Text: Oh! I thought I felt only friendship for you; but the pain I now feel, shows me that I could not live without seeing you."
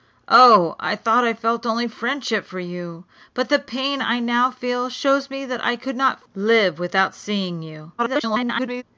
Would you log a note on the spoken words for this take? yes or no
yes